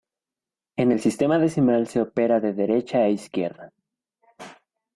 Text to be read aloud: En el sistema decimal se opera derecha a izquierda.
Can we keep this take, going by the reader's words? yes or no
no